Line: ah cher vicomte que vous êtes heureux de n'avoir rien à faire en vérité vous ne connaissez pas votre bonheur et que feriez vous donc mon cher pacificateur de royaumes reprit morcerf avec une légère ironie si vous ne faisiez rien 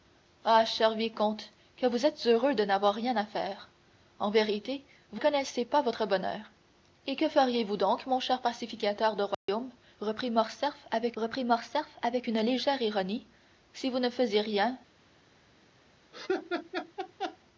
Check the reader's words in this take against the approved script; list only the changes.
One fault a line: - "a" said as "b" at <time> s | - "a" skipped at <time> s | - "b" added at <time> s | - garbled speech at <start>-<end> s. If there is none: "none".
- "ne" skipped at 5.2 s
- "reprit morcerf avec" added at 11.1 s